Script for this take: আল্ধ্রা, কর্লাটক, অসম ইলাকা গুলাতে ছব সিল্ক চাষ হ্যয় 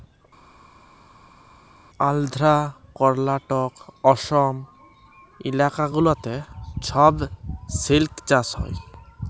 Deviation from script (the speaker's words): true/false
false